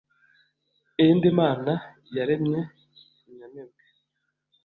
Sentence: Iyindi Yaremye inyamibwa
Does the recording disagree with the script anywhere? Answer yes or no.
yes